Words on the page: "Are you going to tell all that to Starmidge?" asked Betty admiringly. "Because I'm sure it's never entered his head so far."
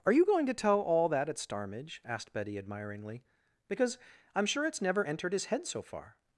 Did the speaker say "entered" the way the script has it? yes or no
yes